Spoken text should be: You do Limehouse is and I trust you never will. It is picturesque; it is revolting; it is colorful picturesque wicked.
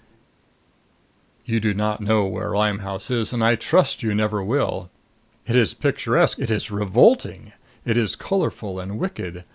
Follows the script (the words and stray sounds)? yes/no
no